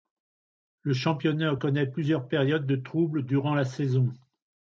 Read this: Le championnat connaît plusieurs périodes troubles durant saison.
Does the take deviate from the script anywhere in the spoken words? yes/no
yes